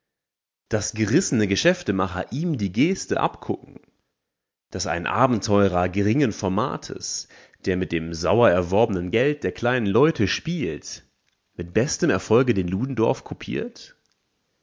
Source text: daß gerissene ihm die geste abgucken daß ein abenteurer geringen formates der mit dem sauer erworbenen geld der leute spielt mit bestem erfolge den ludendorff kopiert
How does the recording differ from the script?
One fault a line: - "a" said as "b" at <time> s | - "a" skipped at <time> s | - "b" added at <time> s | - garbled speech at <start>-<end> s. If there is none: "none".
- "geschäftemacher" added at 1.5 s
- "kleinen" added at 9.5 s